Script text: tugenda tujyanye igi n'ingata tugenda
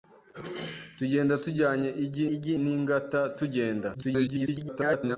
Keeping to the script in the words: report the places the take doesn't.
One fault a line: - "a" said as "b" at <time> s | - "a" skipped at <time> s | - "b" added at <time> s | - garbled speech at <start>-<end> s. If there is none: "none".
- "igi" added at 2.3 s
- garbled speech at 3.9-5.2 s